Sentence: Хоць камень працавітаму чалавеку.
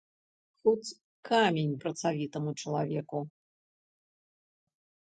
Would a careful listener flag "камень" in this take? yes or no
no